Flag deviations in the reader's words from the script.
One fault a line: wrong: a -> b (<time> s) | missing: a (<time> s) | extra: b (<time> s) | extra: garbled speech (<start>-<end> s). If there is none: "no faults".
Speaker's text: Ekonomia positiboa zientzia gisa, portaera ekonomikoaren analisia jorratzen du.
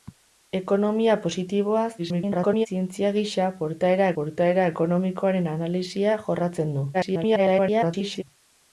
extra: garbled speech (2.0-2.7 s)
extra: portaera (4.2 s)
extra: garbled speech (6.9-8.2 s)